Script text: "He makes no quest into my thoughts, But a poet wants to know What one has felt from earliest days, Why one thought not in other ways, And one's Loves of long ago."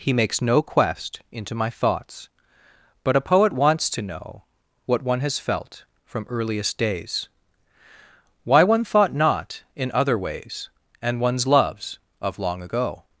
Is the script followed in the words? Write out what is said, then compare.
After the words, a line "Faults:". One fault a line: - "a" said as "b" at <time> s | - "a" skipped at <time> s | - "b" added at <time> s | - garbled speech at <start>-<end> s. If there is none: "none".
"He makes no quest into my thoughts, But a poet wants to know What one has felt from earliest days, Why one thought not in other ways, And one's Loves of long ago."
Faults:
none